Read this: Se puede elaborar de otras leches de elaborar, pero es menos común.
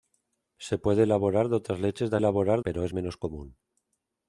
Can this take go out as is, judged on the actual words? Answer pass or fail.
pass